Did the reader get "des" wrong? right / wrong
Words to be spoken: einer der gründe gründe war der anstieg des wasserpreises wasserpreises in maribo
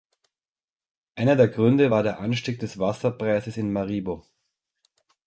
right